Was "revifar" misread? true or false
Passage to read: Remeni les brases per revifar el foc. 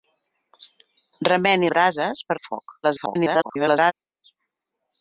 true